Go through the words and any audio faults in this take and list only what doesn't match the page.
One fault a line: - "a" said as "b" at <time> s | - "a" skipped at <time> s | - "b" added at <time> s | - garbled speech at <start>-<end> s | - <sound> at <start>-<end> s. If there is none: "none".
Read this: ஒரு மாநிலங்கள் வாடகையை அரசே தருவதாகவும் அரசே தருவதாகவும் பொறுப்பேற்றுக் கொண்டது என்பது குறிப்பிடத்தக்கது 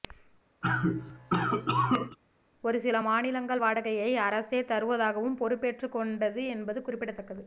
- cough at 0.6-2.2 s
- "சில" added at 2.8 s
- "அரசே தருவதாகவும்" skipped at 5.4 s